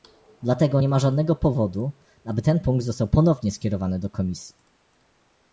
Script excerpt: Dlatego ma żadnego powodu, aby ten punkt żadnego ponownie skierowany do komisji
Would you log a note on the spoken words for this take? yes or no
yes